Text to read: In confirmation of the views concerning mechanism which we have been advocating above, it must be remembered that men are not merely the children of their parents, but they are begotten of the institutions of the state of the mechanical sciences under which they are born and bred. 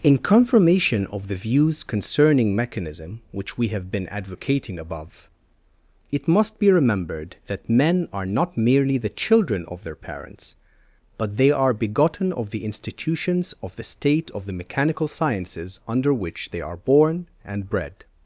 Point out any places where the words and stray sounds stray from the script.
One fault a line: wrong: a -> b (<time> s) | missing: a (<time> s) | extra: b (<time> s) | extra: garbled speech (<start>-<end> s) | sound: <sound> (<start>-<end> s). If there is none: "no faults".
no faults